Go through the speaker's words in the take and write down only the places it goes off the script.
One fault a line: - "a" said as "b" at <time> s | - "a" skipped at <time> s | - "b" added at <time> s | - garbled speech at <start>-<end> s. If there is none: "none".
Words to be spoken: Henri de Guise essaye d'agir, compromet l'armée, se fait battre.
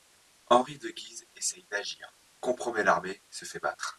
none